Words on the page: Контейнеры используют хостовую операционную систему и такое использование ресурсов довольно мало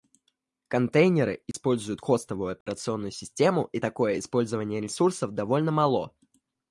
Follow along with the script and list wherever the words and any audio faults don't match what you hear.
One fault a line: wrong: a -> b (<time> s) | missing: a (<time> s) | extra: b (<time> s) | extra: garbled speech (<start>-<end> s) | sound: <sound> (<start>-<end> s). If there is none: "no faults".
sound: dropout (1.5-1.5 s)
sound: dropout (2.6-2.7 s)